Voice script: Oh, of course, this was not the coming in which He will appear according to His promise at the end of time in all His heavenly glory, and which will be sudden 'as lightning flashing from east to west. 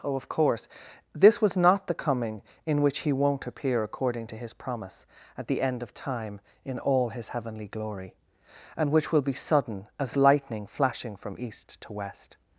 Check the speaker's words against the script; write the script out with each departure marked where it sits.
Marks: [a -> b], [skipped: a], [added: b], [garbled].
Oh, of course, this was not the coming in which He [will -> won't] appear according to His promise at the end of time in all His heavenly glory, and which will be sudden 'as lightning flashing from east to west.